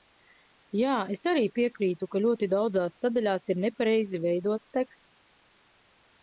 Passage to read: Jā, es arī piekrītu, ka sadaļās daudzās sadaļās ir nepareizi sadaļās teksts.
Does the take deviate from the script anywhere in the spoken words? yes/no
yes